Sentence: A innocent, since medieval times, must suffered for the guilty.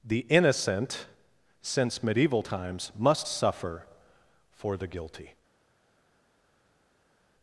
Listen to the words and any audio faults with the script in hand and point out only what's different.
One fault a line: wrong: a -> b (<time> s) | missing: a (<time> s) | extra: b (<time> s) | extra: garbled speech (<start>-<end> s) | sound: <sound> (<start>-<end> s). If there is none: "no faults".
wrong: A -> The (0.0 s)
wrong: suffered -> suffer (3.2 s)